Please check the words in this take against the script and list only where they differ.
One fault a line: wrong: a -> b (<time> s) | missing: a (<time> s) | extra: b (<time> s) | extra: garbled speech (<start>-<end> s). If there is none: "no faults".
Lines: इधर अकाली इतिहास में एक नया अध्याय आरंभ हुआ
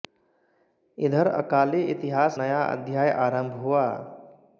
missing: में एक (2.4 s)